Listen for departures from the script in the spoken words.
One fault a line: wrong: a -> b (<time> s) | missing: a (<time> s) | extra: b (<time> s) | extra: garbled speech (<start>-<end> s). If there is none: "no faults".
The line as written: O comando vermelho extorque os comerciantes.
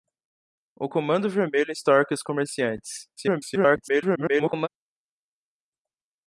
extra: garbled speech (3.2-4.7 s)